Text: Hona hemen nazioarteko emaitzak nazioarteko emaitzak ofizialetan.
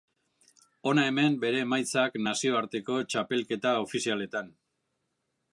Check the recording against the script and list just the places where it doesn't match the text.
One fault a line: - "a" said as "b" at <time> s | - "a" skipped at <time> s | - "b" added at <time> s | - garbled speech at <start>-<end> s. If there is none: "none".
- "nazioarteko" said as "bere" at 1.4 s
- "emaitzak" said as "txapelketa" at 3.1 s